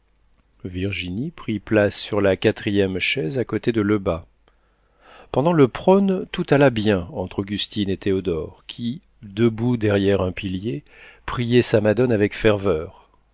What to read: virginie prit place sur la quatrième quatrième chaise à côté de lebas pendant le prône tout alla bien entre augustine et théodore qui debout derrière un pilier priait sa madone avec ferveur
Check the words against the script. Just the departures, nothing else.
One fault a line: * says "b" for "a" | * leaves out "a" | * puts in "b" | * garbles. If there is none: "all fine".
* leaves out "quatrième"